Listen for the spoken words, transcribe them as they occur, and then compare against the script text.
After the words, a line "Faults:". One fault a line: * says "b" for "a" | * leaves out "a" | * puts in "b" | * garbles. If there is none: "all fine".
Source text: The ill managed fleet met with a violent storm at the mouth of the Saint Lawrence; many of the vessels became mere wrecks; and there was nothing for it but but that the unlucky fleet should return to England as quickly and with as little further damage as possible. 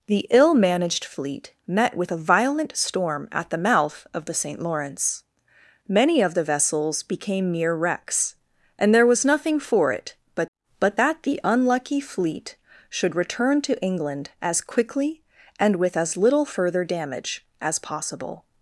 The ill managed fleet met with a violent storm at the mouth of the Saint Lawrence; many of the vessels became mere wrecks; and there was nothing for it but but that the unlucky fleet should return to England as quickly and with as little further damage as possible.
Faults:
all fine